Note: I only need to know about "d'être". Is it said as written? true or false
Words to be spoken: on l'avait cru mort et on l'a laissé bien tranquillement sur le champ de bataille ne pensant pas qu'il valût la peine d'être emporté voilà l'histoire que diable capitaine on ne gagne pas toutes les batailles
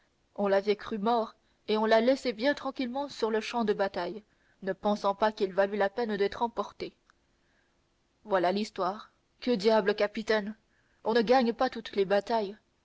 true